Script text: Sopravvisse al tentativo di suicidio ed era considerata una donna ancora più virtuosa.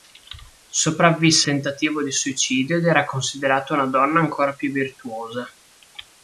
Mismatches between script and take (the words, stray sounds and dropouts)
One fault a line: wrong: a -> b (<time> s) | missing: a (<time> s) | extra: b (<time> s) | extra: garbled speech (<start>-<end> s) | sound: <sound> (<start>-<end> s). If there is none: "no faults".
missing: al (1.5 s)